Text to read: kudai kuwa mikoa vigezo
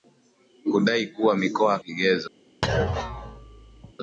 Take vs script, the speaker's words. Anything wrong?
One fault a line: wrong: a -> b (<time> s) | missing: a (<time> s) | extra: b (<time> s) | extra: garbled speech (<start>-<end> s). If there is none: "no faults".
no faults